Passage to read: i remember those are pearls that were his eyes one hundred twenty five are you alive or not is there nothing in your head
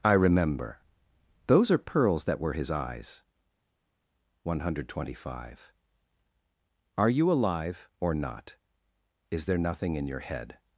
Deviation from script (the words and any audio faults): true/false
false